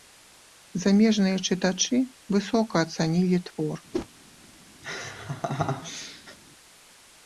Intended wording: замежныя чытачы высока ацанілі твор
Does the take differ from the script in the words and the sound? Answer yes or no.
yes